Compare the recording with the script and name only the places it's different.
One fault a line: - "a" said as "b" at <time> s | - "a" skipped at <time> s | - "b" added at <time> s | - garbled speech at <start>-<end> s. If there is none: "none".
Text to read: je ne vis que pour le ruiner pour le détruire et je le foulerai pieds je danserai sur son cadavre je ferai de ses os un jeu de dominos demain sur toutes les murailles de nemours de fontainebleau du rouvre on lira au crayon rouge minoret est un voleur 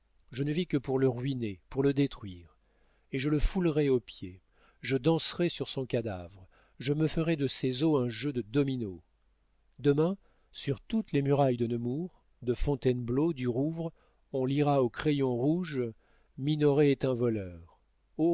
- "aux" added at 3.9 s
- "me" added at 6.9 s